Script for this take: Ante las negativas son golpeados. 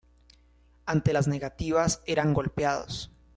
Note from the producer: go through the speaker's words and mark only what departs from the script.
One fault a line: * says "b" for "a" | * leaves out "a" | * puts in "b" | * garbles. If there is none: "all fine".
* says "eran" for "son"